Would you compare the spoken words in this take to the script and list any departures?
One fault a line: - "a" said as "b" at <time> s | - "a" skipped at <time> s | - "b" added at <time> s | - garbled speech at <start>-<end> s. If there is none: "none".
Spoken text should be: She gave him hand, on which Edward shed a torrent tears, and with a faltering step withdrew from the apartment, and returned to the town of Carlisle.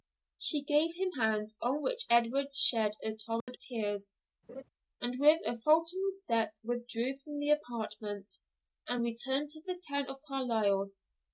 none